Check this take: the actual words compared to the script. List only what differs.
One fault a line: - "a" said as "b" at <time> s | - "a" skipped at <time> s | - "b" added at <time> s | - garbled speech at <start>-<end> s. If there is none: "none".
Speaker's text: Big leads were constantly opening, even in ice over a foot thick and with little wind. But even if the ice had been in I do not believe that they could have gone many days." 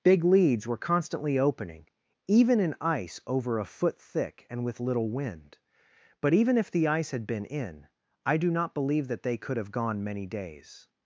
none